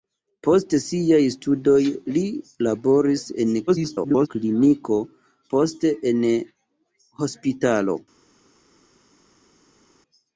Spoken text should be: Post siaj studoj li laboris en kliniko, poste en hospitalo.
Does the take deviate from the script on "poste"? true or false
false